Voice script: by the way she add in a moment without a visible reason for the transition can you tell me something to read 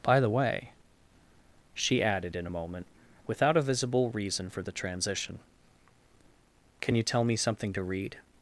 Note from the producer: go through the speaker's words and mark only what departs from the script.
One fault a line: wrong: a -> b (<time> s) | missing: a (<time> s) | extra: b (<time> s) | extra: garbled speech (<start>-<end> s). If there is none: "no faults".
wrong: add -> added (2.0 s)